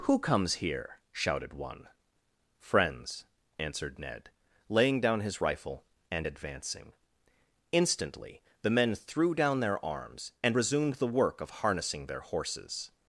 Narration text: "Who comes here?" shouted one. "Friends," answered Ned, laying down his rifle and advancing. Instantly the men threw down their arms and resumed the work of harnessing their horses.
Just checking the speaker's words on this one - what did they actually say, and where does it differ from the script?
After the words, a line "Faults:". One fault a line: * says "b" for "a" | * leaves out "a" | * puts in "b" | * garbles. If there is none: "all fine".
"Who comes here?" shouted one. "Friends," answered Ned, laying down his rifle and advancing. Instantly the men threw down their arms and resumed the work of harnessing their horses.
Faults:
all fine